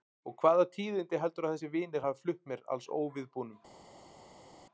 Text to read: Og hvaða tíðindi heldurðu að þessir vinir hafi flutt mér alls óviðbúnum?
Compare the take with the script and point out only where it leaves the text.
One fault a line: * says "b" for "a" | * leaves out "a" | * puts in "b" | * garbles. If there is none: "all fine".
all fine